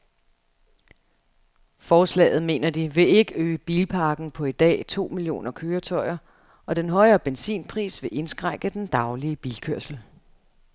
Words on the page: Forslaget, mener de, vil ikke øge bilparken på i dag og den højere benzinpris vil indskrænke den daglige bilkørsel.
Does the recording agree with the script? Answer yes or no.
no